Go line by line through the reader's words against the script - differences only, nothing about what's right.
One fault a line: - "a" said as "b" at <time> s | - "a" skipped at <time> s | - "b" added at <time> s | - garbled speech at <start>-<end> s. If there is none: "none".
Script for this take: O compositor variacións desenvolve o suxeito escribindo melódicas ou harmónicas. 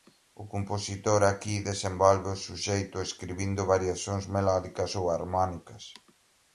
- "variacións" said as "aquí" at 1.2 s
- "variacións" added at 3.7 s